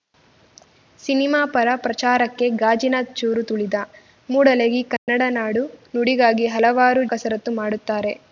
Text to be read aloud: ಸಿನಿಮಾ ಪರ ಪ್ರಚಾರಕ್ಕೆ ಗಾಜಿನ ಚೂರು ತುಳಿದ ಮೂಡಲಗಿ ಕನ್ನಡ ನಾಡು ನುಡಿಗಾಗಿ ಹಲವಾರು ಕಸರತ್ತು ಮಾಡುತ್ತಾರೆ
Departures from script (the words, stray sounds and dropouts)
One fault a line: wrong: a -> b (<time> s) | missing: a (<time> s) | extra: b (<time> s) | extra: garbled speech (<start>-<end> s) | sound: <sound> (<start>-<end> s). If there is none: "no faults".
sound: dropout (5.0-5.1 s)